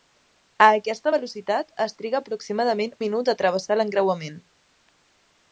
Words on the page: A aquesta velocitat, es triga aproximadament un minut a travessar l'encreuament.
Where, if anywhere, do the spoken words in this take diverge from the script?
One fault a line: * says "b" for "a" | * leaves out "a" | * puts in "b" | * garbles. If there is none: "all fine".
* leaves out "un"